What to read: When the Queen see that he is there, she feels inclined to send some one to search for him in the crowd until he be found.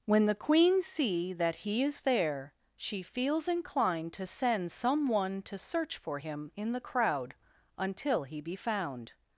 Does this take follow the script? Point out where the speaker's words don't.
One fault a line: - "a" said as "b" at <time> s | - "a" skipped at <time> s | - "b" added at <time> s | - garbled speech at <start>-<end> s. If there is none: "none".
none